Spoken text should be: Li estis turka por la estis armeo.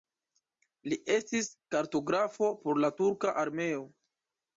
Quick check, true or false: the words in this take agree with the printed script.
false